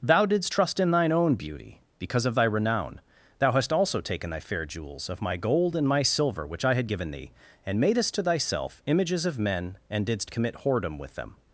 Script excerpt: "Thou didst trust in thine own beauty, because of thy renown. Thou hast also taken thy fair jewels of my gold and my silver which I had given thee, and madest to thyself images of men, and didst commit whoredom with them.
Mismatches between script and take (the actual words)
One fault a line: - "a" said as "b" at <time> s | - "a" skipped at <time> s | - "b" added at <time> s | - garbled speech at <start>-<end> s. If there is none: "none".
none